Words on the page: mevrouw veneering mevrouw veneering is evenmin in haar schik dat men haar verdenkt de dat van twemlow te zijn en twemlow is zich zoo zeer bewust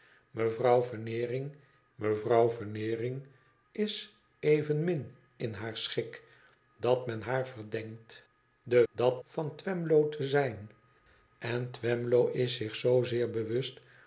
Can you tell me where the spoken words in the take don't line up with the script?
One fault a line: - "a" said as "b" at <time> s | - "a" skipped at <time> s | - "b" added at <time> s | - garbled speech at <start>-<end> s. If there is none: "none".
none